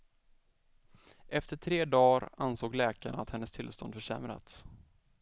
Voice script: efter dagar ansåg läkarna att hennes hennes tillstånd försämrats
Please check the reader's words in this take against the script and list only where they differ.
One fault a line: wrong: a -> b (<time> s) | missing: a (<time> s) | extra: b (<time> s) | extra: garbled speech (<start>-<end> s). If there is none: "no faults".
extra: tre (1.6 s)
missing: hennes (3.5 s)